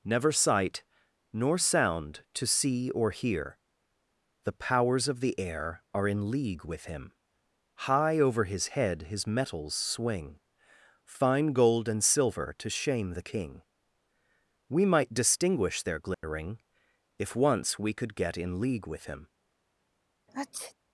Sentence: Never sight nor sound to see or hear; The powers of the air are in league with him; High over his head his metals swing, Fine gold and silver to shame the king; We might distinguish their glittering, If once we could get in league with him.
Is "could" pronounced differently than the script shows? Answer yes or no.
no